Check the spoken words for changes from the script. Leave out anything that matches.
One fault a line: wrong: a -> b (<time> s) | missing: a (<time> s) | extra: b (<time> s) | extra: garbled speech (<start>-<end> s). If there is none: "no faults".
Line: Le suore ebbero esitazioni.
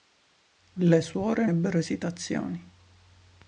no faults